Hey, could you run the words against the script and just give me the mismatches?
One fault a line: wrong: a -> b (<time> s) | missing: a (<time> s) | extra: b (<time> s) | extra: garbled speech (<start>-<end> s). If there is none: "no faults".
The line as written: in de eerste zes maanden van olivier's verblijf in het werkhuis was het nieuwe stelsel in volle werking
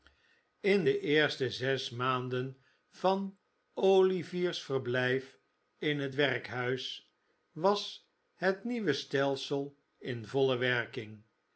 no faults